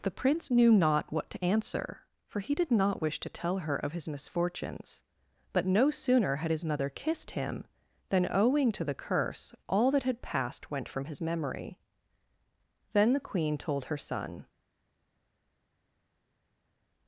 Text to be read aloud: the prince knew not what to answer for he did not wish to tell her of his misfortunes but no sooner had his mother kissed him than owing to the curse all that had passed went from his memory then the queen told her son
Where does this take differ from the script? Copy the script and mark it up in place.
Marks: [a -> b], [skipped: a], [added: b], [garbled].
the prince knew not what to answer for he did not wish to tell her of his misfortunes but no sooner had his mother kissed him than owing to the curse all that had passed went from his memory then the queen told her son